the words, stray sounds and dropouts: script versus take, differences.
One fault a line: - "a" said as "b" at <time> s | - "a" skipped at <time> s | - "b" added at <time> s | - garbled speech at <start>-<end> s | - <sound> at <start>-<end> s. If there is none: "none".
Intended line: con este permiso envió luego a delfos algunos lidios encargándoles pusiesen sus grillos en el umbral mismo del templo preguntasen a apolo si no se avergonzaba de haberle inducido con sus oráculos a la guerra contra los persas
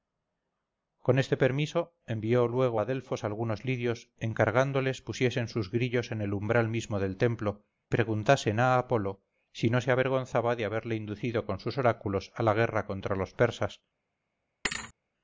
- thud at 14.6-14.9 s